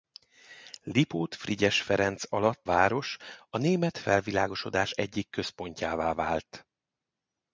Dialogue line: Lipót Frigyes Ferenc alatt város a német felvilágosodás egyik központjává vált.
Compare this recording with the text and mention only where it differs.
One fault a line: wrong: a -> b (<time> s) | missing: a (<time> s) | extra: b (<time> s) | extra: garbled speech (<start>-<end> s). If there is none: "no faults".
no faults